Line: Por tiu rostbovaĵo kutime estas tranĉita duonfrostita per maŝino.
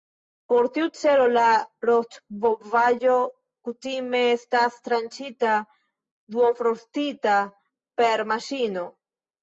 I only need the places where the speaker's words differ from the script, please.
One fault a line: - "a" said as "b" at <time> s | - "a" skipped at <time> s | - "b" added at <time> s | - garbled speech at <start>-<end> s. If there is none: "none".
- "celo la" added at 1.0 s